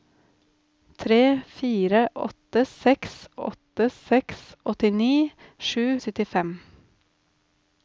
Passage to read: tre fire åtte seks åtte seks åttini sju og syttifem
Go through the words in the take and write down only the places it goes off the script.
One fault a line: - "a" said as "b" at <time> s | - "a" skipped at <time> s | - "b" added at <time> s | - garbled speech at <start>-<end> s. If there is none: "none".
none